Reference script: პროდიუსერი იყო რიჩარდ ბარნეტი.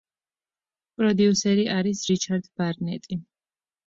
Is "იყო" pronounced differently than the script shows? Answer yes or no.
yes